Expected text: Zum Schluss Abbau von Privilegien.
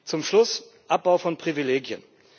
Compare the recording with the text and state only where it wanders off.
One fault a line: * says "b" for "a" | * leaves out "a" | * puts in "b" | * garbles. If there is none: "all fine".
all fine